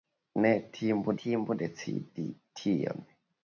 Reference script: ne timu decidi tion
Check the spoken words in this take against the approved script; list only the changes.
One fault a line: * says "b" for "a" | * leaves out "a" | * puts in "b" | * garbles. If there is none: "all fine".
* puts in "timu"